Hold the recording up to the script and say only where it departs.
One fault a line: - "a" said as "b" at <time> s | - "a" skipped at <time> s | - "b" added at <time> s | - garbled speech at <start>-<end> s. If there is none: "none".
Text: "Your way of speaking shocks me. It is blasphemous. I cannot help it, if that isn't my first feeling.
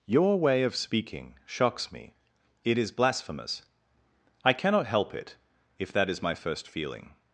- "isn't" said as "is" at 6.1 s